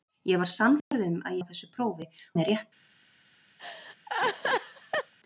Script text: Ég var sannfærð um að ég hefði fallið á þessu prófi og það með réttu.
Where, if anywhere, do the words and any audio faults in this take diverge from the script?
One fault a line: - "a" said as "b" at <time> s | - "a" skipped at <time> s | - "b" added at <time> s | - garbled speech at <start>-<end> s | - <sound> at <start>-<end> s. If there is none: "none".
- dropout at 0.8-0.9 s
- "ég hefði fallið" skipped at 1.4 s
- "og það" skipped at 2.1 s
- laugh at 3.6-5.1 s